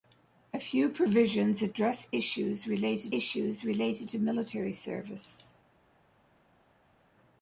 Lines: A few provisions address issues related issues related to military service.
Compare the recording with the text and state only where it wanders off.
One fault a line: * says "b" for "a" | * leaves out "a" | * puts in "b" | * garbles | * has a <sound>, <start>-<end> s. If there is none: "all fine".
all fine